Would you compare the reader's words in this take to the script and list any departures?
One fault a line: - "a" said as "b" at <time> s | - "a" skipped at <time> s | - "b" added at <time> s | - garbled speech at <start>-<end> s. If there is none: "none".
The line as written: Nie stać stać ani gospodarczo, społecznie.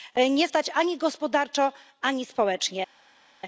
- "stać" skipped at 0.7 s
- "ani" added at 2.0 s